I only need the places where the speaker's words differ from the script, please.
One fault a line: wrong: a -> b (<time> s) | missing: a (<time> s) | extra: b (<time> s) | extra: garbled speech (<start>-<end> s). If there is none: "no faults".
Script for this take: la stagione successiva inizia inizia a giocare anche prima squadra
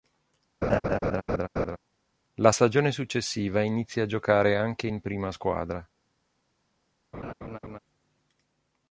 missing: inizia (4.0 s)
extra: in (4.9 s)